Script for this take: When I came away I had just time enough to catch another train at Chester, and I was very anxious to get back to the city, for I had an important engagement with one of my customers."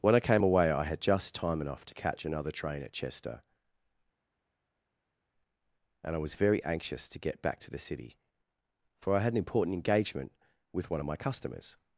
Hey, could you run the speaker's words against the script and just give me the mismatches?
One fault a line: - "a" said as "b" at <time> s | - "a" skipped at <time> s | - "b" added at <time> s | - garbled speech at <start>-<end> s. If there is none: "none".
none